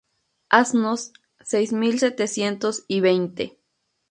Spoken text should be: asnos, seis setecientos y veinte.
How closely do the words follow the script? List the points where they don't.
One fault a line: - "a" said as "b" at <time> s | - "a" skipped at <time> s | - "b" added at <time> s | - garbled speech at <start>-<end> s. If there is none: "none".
- "mil" added at 1.7 s